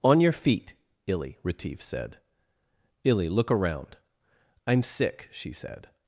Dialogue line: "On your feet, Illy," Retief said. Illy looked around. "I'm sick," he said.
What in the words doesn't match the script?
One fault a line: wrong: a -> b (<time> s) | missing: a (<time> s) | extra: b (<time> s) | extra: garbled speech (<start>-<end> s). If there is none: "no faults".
wrong: looked -> look (3.3 s)
wrong: he -> she (5.3 s)